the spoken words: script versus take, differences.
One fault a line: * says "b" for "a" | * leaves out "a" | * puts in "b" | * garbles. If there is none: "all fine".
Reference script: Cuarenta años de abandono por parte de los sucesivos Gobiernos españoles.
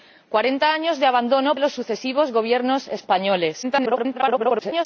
* leaves out "por parte"
* garbles